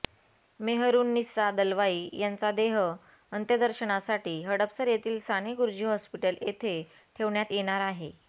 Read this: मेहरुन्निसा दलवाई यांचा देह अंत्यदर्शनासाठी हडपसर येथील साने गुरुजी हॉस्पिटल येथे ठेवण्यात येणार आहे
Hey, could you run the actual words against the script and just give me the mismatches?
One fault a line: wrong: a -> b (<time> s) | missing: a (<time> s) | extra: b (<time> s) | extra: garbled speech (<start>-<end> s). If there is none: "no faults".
no faults